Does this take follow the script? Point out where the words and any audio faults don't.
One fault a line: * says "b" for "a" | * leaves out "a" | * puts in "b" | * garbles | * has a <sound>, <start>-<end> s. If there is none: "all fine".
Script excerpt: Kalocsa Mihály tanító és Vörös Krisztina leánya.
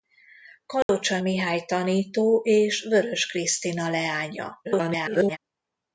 * has a dropout, 0.8-0.9 s
* garbles